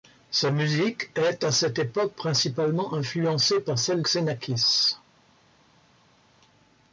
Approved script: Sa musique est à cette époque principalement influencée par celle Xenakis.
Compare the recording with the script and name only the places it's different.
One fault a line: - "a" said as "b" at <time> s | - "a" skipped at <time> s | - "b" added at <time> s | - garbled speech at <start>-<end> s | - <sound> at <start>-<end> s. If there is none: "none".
none